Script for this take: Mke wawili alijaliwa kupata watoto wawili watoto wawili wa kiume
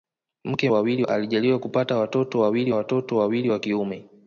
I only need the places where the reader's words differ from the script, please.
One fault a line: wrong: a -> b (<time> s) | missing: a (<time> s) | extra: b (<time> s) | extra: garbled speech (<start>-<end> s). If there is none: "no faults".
no faults